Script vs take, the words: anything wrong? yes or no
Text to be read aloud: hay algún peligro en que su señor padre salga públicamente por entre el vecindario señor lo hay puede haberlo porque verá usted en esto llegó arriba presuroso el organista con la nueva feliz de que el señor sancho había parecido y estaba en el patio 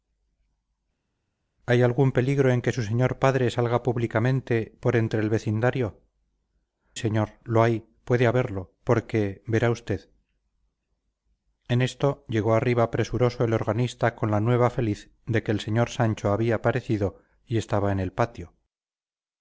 no